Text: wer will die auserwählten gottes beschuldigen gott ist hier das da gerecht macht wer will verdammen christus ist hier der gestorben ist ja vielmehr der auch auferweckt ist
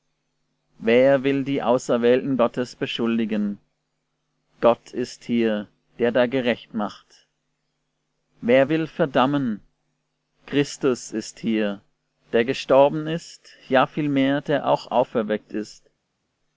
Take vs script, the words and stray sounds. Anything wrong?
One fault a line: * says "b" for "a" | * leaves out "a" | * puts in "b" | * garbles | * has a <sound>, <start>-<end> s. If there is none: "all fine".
* says "der" for "das"